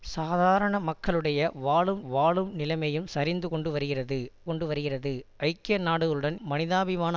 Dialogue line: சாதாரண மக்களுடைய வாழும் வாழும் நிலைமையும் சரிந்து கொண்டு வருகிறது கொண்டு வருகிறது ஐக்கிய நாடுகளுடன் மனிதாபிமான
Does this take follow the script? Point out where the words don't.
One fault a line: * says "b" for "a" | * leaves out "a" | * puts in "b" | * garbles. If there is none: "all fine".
all fine